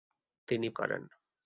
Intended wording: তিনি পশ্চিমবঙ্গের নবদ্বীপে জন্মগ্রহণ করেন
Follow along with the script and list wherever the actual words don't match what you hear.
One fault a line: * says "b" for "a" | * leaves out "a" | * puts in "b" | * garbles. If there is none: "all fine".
* leaves out "পশ্চিমবঙ্গের নবদ্বীপে জন্মগ্রহণ"